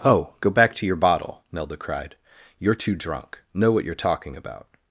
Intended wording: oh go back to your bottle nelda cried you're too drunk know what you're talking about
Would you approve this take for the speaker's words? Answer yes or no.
yes